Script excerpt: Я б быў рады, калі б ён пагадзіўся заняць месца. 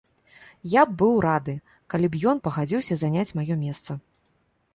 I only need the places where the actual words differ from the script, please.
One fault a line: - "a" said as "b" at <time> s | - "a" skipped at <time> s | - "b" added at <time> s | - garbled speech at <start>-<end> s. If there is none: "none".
- "маё" added at 3.4 s